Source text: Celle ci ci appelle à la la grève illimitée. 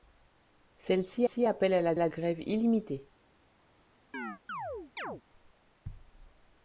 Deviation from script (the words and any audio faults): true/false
true